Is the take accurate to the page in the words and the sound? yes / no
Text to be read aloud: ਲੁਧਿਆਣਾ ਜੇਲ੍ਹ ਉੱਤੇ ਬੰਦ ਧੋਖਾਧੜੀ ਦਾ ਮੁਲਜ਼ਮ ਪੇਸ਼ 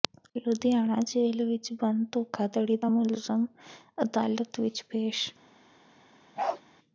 no